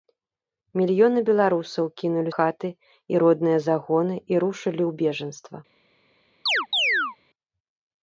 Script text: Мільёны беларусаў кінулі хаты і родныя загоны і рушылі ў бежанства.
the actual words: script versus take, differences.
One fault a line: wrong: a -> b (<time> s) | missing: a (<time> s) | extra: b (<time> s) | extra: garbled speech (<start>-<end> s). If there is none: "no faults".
no faults